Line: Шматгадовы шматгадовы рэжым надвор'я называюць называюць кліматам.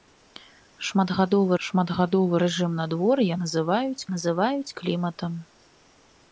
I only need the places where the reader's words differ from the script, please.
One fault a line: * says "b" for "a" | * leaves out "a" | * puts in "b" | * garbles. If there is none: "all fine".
all fine